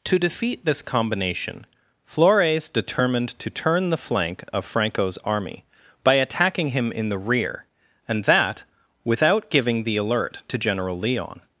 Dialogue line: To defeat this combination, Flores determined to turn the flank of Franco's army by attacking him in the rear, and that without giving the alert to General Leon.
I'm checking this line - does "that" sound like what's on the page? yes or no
yes